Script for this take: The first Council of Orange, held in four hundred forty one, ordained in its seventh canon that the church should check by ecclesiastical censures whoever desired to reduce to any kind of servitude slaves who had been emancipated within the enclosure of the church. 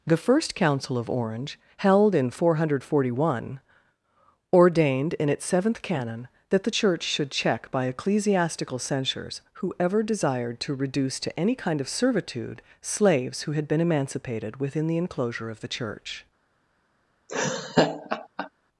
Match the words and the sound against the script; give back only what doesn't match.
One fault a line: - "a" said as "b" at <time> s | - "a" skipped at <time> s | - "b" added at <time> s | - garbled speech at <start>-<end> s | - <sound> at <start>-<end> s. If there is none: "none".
- laugh at 17.3-18.5 s